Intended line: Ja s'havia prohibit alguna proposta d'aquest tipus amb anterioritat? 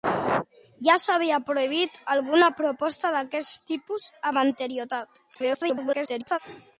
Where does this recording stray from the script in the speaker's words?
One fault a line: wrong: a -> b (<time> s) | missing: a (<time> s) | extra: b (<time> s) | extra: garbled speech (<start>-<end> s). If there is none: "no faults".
extra: garbled speech (5.3-6.4 s)